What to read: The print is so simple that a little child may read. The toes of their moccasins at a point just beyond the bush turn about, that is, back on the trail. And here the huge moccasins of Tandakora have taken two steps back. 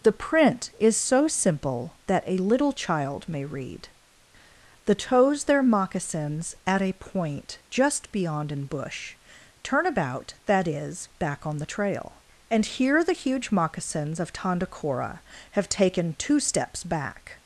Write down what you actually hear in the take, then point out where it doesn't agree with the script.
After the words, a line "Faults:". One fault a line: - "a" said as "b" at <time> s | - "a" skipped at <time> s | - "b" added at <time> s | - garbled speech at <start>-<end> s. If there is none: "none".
The print is so simple that a little child may read. The toes their moccasins at a point just beyond an bush turn about, that is, back on the trail. And here the huge moccasins of Tandakora have taken two steps back.
Faults:
- "of" skipped at 5.4 s
- "the" said as "an" at 8.5 s